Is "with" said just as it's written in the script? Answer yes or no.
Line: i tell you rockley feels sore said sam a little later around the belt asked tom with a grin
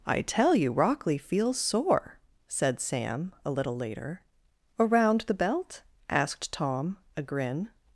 no